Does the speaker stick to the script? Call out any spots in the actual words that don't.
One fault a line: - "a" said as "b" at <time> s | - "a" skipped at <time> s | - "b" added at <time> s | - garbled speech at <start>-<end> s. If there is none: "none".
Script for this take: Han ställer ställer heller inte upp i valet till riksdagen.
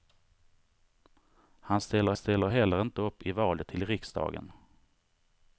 none